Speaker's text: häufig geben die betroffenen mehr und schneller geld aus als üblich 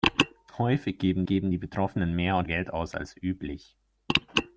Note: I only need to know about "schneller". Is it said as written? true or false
false